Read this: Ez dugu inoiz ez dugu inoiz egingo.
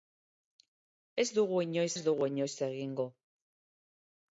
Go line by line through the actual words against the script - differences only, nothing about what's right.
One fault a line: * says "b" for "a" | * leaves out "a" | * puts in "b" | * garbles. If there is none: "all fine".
all fine